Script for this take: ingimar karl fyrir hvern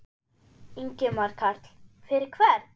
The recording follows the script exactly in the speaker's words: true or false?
true